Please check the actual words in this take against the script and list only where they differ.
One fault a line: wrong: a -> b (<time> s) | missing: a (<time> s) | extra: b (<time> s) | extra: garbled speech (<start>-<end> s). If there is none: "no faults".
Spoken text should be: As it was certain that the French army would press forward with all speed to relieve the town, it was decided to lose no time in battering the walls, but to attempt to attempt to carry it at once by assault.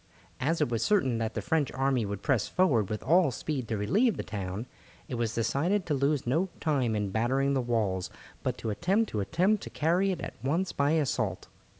no faults